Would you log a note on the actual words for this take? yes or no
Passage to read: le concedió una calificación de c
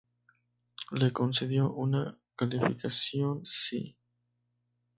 yes